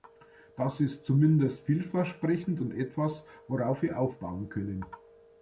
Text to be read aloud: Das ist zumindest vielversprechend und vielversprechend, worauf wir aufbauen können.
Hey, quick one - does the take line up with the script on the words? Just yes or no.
no